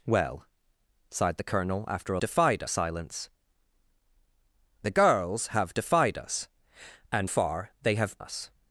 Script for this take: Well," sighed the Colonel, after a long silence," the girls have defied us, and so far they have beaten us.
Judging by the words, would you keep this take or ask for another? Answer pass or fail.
fail